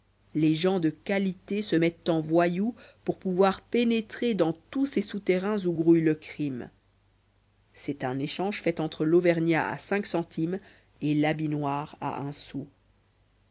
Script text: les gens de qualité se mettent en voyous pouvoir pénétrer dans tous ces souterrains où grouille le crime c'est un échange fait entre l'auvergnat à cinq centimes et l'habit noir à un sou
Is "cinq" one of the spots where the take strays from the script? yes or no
no